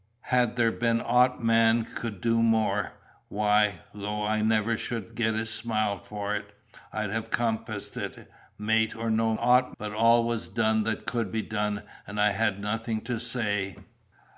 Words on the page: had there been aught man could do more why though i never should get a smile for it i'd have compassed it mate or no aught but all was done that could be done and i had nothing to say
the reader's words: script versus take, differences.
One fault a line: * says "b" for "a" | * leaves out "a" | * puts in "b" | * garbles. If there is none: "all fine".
all fine